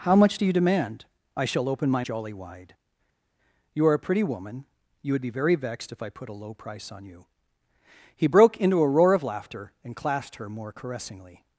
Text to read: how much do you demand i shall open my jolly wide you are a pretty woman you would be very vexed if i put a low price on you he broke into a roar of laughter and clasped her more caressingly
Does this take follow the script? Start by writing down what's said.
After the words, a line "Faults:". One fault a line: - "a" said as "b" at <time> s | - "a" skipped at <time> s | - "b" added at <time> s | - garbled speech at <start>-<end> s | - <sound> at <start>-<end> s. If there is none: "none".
how much do you demand i shall open my jolly wide you are a pretty woman you would be very vexed if i put a low price on you he broke into a roar of laughter and clasped her more caressingly
Faults:
none